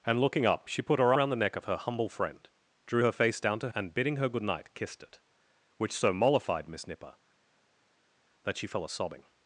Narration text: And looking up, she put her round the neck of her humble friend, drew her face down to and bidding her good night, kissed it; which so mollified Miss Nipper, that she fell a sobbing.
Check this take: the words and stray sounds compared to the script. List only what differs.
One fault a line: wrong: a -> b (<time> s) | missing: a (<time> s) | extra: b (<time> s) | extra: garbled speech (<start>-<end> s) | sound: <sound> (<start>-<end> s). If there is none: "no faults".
no faults